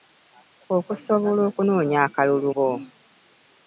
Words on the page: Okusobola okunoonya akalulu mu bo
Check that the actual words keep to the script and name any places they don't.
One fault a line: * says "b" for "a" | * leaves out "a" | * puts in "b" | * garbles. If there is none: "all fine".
* leaves out "mu"